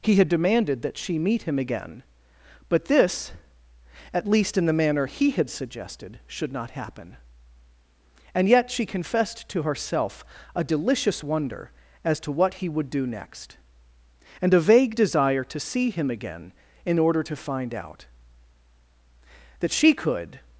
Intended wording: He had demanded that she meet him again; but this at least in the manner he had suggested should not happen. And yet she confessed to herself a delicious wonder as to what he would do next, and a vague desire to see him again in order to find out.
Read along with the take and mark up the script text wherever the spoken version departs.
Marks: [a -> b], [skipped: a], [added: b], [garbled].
He had demanded that she meet him again; but this at least in the manner he had suggested should not happen. And yet she confessed to herself a delicious wonder as to what he would do next, and a vague desire to see him again in order to find out. [added: That she could]